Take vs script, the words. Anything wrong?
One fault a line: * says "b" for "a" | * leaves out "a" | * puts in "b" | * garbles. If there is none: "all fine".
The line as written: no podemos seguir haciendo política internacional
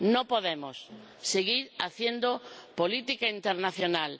all fine